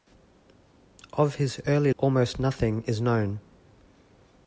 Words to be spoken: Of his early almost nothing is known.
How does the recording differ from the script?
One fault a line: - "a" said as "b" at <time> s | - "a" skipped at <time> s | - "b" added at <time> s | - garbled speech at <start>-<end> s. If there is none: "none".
none